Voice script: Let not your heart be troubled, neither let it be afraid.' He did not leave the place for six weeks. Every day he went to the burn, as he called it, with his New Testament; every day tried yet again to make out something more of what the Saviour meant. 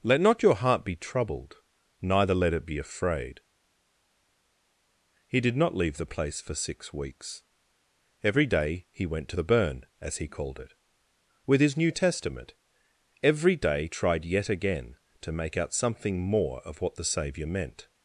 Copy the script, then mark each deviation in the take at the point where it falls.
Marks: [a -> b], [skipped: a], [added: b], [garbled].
Let not your heart be troubled, neither let it be afraid.' He did not leave the place for six weeks. Every day he went to the burn, as he called it, with his New Testament; every day tried yet again to make out something more of what the Saviour meant.